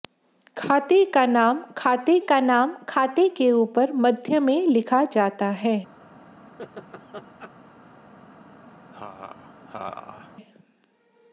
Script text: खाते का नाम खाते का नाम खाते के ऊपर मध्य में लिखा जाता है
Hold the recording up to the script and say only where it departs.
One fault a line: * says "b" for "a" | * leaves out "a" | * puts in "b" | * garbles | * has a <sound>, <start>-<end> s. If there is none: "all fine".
* has a laugh, 6.6-7.5 s
* has a laugh, 8.9-10.3 s